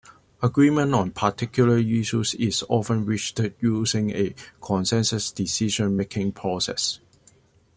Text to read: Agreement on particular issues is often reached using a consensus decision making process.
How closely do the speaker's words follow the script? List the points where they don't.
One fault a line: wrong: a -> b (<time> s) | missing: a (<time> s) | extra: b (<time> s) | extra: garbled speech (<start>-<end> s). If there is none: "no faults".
no faults